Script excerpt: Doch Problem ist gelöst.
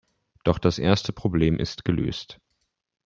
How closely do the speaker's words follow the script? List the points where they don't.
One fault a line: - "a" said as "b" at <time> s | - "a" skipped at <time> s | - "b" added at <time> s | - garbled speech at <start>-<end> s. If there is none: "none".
- "das erste" added at 0.6 s